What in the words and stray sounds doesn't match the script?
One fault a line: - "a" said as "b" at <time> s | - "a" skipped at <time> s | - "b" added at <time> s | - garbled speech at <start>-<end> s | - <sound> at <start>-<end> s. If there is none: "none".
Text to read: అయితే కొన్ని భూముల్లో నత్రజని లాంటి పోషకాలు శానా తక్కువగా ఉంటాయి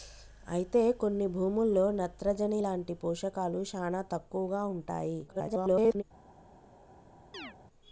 - garbled speech at 5.3-6.0 s
- chirp at 7.3-7.6 s